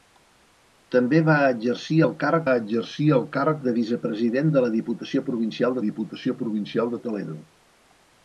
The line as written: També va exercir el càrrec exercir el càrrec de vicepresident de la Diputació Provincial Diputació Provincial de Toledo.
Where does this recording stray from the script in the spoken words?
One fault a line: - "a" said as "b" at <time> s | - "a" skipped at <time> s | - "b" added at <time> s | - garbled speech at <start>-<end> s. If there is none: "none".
none